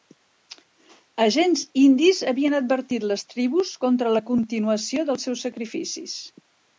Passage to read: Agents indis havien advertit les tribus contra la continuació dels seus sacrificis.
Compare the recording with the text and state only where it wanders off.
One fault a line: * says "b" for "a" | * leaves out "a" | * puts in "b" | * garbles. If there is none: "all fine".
all fine